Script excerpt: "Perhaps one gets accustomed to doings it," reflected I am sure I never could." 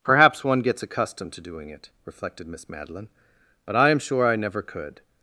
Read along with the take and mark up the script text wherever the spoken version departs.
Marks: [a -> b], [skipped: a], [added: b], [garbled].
"Perhaps one gets accustomed to [doings -> doing] it," reflected [added: Miss Madeline But] I am sure I never could."